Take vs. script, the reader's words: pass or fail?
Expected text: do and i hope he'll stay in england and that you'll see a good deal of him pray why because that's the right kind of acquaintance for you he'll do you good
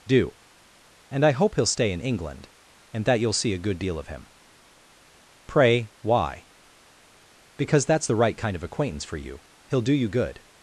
pass